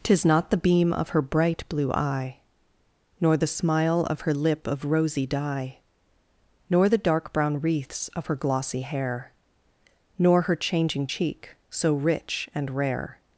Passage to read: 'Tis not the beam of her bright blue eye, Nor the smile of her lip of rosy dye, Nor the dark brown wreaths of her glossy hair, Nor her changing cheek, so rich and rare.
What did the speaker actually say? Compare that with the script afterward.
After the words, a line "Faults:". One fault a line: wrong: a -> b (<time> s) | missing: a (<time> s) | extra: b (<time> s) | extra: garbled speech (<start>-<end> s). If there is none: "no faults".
'Tis not the beam of her bright blue eye, Nor the smile of her lip of rosy dye, Nor the dark brown wreaths of her glossy hair, Nor her changing cheek, so rich and rare.
Faults:
no faults